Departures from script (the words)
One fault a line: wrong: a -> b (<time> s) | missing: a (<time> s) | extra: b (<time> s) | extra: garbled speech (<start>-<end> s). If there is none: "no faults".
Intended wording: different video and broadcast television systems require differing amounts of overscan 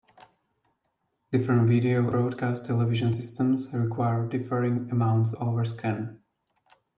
missing: and (2.1 s)
missing: of (5.3 s)